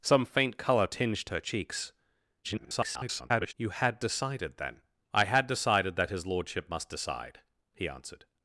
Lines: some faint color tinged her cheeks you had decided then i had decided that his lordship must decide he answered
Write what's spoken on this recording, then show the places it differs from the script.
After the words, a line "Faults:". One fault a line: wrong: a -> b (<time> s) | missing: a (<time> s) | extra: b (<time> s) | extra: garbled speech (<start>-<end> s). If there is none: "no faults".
some faint color tinged her cheeks [garbled] you had decided then i had decided that his lordship must decide he answered
Faults:
extra: garbled speech (2.4-3.5 s)